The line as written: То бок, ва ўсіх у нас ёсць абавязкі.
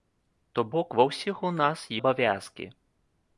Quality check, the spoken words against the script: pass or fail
fail